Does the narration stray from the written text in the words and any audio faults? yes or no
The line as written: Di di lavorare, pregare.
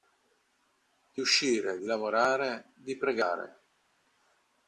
yes